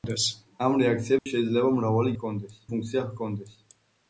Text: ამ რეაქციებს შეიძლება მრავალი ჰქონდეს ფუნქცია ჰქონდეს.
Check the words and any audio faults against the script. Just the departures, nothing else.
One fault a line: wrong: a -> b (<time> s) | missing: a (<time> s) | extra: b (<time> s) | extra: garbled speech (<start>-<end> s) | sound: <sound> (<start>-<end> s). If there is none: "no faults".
sound: dropout (1.2-1.3 s)